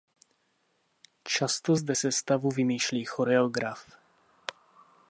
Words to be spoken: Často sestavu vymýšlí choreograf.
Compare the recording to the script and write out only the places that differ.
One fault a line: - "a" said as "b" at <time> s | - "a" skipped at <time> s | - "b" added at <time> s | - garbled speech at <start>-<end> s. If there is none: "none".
- "zde" added at 1.7 s